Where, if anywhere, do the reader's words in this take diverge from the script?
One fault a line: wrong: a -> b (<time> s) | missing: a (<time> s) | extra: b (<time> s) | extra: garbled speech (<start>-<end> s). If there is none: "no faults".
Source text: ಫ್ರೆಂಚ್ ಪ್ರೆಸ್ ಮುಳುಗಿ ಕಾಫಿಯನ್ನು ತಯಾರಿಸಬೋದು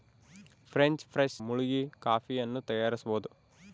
no faults